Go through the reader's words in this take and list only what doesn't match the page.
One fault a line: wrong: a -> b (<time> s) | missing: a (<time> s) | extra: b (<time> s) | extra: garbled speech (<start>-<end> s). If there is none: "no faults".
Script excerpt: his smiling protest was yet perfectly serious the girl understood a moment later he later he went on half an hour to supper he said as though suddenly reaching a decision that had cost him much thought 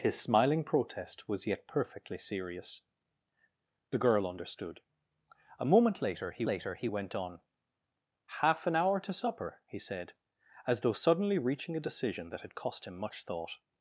no faults